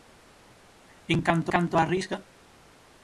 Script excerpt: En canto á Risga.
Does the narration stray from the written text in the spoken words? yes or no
yes